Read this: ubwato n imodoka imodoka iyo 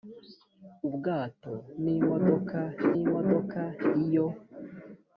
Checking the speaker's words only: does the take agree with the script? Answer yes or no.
yes